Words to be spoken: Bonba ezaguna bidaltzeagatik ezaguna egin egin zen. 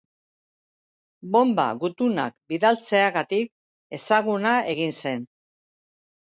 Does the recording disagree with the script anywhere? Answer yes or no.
yes